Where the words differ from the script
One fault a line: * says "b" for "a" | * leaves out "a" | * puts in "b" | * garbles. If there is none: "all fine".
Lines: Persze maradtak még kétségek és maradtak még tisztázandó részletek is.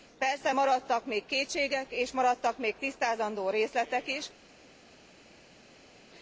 all fine